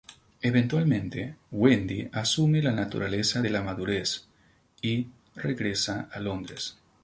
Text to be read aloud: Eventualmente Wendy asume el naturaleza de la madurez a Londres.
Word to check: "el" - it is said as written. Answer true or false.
false